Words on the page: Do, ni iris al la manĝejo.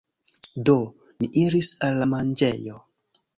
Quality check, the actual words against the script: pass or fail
pass